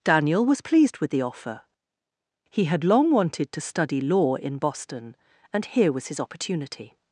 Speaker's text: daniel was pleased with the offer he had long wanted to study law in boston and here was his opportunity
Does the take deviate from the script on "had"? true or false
false